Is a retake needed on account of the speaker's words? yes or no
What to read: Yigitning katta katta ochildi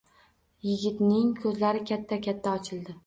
yes